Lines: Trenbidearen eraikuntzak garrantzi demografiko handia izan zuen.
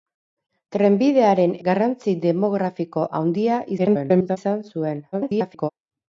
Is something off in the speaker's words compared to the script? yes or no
yes